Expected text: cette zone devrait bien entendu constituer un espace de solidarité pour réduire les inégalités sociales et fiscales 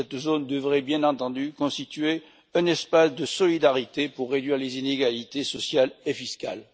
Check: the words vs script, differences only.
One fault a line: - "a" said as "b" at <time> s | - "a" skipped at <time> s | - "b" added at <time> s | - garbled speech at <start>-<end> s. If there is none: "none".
none